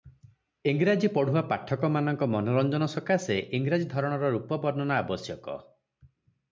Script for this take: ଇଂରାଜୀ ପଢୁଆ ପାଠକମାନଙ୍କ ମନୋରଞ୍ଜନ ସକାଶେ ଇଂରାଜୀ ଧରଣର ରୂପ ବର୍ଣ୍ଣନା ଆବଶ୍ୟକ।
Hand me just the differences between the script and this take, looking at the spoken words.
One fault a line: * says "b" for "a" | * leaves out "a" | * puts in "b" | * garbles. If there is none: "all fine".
all fine